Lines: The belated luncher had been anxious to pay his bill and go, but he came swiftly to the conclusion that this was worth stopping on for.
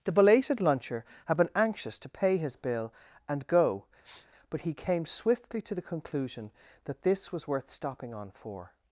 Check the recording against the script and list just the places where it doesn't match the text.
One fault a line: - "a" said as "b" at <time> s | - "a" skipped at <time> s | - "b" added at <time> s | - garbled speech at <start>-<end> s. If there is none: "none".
none